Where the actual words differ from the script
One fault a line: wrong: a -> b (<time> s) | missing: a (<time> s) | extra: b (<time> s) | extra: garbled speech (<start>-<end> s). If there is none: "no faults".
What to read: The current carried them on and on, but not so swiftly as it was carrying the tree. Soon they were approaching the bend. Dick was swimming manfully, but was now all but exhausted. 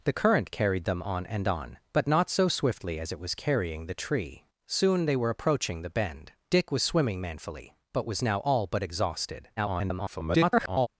extra: garbled speech (9.6-10.9 s)